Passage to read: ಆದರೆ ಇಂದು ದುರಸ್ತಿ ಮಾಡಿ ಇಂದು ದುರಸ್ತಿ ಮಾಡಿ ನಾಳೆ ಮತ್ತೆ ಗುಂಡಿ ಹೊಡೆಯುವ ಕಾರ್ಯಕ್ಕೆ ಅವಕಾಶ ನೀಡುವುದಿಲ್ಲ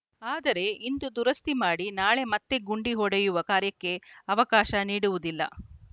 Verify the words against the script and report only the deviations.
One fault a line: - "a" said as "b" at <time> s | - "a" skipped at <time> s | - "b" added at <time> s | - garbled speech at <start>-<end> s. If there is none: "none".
- "ಇಂದು ದುರಸ್ತಿ ಮಾಡಿ" skipped at 1.9 s